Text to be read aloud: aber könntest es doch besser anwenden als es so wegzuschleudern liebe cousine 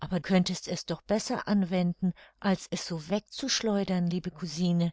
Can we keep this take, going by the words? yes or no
yes